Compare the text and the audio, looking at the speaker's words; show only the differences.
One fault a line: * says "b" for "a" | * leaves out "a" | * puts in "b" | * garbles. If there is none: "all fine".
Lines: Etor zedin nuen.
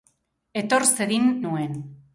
all fine